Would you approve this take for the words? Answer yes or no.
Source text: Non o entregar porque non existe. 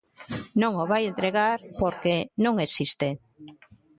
no